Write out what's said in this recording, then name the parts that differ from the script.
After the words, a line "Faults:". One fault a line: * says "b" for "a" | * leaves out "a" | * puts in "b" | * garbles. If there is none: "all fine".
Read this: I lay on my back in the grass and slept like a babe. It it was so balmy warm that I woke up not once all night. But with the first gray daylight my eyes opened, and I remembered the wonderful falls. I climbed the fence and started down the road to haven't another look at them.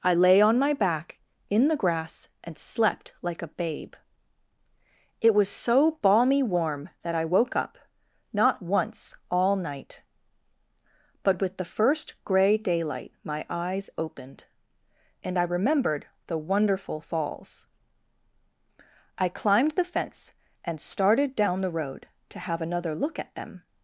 I lay on my back in the grass and slept like a babe. It was so balmy warm that I woke up not once all night. But with the first gray daylight my eyes opened, and I remembered the wonderful falls. I climbed the fence and started down the road to have another look at them.
Faults:
* leaves out "it"
* says "have" for "haven't"